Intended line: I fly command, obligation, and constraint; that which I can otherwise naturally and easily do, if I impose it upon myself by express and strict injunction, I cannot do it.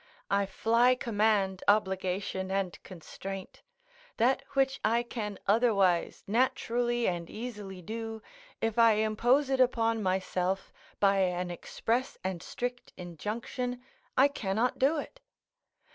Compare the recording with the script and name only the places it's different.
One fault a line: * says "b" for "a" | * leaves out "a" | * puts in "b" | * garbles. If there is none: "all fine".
* puts in "an"